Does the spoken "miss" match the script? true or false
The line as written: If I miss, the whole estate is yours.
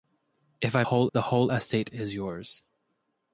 false